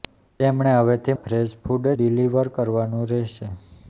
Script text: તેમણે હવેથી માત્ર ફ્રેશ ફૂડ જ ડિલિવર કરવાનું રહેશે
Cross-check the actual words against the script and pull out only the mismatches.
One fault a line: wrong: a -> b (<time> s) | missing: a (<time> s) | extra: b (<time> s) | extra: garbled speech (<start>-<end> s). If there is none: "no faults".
missing: માત્ર (1.1 s)
missing: જ (1.9 s)